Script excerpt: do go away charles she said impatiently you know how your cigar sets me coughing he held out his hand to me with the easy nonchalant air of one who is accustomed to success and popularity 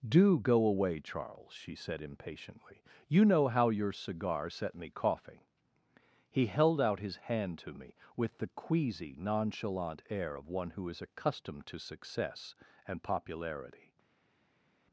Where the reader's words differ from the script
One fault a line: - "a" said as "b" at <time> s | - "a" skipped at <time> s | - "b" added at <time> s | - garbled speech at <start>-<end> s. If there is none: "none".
- "sets" said as "set" at 4.5 s
- "easy" said as "queasy" at 8.5 s